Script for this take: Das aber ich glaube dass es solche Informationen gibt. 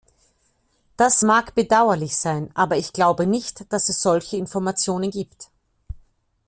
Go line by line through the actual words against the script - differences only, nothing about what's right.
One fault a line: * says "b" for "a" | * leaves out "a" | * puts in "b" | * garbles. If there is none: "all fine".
* puts in "mag bedauerlich sein"
* puts in "nicht"